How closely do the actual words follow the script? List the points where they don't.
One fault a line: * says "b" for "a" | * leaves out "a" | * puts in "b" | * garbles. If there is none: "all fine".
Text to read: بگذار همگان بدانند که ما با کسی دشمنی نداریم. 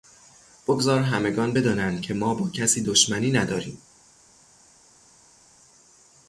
all fine